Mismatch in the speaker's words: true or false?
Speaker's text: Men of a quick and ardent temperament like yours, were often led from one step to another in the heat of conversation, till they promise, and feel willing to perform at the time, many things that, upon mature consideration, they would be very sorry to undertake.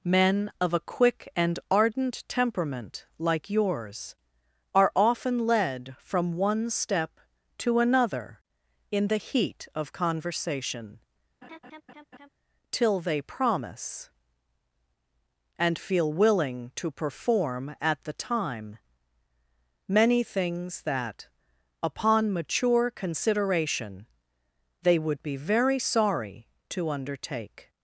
true